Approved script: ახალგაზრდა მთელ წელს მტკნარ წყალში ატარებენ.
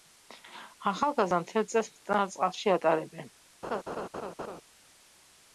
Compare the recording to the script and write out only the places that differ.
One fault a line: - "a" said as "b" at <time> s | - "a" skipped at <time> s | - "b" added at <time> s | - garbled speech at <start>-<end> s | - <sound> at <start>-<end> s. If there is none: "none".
- laugh at 3.6-4.6 s